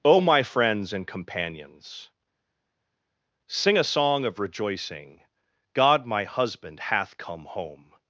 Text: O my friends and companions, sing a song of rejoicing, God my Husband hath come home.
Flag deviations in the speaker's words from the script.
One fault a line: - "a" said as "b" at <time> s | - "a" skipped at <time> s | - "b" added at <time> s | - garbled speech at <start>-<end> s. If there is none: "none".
none